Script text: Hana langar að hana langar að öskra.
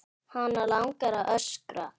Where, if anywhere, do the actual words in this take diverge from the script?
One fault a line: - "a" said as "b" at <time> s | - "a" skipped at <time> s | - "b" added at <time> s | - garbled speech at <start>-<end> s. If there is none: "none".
- "hana langar að" skipped at 1.3 s